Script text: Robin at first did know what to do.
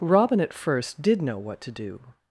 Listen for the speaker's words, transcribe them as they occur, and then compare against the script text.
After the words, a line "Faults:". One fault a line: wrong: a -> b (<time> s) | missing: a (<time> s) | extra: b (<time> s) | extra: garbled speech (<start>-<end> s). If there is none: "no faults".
Robin at first did know what to do.
Faults:
no faults